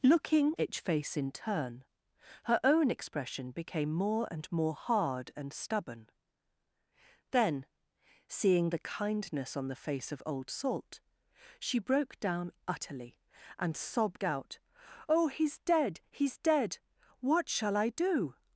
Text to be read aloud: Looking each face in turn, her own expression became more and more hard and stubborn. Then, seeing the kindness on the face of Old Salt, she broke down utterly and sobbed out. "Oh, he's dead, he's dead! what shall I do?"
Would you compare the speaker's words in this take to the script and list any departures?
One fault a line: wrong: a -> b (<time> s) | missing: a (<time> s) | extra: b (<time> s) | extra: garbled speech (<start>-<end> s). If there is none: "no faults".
no faults